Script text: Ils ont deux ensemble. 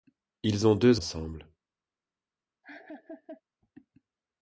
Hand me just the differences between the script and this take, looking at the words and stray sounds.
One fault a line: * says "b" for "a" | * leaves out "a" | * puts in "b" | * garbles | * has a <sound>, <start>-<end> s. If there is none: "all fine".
* has a laugh, 2.6-3.4 s